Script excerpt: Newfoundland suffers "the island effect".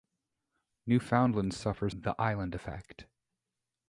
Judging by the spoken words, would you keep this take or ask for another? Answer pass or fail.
pass